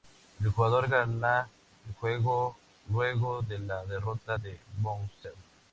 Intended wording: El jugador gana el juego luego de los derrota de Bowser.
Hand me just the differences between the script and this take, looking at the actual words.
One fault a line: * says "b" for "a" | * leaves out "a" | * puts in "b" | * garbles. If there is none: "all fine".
* says "la" for "los"